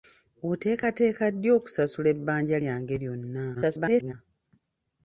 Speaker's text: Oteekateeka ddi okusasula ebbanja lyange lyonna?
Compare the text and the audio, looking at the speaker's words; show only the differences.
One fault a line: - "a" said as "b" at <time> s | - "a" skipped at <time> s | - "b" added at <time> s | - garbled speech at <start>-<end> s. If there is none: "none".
- garbled speech at 3.5-4.1 s